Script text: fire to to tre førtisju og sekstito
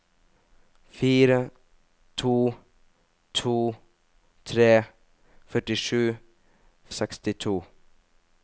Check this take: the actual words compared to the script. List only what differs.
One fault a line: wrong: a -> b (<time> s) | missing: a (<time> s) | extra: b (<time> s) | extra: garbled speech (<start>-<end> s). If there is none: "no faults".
no faults